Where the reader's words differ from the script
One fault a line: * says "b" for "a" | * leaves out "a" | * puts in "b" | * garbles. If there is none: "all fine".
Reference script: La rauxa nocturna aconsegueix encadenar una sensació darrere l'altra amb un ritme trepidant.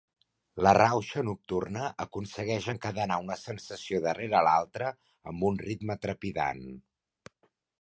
all fine